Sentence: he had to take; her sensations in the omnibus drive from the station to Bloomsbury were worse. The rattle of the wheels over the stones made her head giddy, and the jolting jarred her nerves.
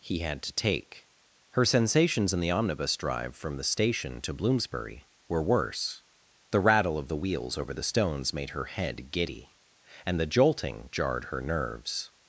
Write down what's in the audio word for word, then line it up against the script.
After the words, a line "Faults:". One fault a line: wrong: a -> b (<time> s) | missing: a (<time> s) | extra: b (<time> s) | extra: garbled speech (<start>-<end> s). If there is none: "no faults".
he had to take; her sensations in the omnibus drive from the station to Bloomsbury were worse. The rattle of the wheels over the stones made her head giddy, and the jolting jarred her nerves.
Faults:
no faults